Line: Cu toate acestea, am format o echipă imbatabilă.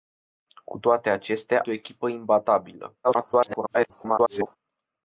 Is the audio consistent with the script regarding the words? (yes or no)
no